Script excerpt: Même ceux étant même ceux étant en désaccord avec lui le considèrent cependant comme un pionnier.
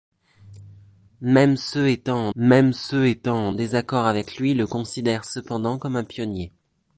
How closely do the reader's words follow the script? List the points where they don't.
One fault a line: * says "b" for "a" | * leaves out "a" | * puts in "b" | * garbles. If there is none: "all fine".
all fine